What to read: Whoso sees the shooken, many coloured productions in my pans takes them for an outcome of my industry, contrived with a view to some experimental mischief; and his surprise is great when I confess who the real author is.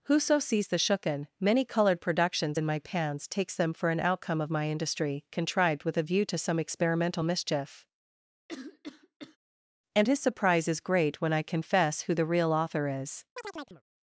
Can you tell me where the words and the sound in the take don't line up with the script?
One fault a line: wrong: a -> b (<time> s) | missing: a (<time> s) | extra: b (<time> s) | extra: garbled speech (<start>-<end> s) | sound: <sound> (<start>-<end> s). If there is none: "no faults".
sound: cough (8.5-9.4 s)
sound: chirp (13.4-13.8 s)